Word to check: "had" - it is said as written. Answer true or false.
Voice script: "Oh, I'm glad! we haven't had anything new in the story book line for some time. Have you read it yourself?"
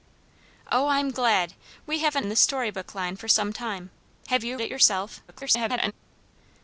false